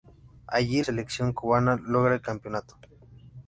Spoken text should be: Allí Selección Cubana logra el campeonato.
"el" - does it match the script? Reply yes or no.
yes